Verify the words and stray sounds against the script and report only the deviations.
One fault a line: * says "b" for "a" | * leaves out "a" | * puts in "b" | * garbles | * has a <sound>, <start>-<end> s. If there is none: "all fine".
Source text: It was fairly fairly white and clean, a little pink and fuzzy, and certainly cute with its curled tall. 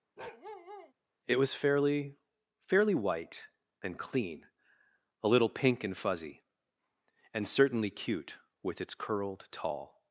* has a bark, 0.2-0.9 s